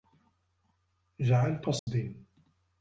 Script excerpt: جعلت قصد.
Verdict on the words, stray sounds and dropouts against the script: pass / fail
fail